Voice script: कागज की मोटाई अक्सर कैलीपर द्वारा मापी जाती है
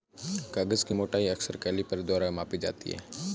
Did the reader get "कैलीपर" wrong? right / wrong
right